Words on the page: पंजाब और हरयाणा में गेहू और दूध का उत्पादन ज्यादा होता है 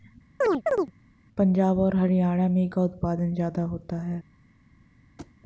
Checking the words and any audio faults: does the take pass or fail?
fail